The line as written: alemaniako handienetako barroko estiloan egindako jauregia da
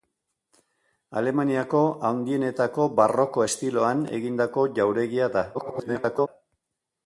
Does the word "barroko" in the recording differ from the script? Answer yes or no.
no